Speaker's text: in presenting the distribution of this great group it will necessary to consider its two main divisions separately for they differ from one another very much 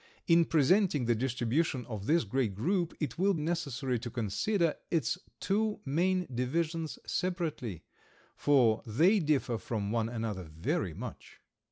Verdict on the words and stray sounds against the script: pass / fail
pass